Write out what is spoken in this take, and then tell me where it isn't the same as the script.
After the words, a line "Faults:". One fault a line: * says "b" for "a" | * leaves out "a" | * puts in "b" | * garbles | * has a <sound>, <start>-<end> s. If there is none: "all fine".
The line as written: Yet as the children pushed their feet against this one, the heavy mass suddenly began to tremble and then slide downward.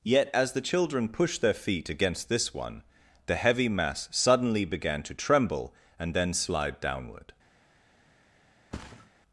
Yet as the children pushed their feet against this one, the heavy mass suddenly began to tremble and then slide downward.
Faults:
* has a thud, 8.7-9.1 s